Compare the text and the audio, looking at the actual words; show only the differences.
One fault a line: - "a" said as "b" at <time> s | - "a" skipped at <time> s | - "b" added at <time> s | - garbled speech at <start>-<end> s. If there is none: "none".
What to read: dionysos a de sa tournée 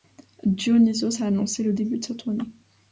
- "annoncé le début" added at 1.3 s